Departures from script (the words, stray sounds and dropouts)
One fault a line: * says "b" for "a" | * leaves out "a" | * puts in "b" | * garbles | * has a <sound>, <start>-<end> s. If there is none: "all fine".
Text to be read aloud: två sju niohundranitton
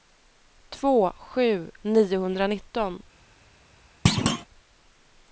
* has a thud, 4.1-4.5 s